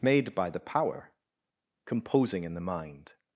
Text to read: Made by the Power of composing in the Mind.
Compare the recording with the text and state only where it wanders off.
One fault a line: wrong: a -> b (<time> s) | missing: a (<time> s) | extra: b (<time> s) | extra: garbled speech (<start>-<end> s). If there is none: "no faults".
missing: of (1.1 s)